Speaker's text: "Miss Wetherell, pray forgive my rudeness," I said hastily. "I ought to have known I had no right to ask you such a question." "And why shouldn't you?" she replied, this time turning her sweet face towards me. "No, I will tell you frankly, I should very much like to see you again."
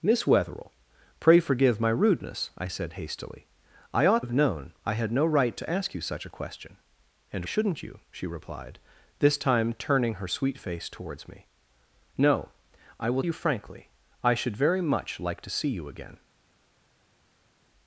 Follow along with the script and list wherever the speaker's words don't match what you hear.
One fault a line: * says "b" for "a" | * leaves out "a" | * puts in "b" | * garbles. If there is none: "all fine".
* leaves out "to"
* leaves out "why"
* leaves out "tell"